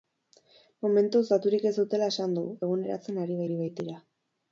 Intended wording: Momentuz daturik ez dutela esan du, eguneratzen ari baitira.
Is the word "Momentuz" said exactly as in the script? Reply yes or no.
yes